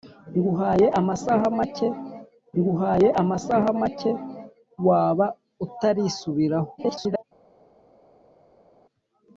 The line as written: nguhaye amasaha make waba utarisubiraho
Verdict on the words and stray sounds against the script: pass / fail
fail